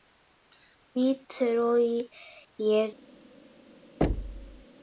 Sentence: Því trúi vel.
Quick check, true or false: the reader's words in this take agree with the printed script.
false